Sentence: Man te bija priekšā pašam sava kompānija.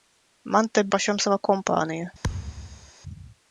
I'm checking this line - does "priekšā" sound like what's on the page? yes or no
no